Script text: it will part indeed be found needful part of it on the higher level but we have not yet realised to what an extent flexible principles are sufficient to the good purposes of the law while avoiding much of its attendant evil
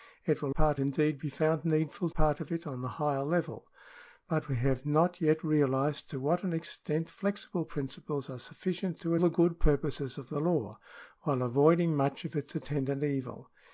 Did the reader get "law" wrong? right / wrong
right